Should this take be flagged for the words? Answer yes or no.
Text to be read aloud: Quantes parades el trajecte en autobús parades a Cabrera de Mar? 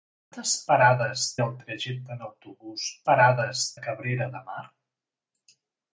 no